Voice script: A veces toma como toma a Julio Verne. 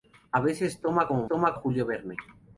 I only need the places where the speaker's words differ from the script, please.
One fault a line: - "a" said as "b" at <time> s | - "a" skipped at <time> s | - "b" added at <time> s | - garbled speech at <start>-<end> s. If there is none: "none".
none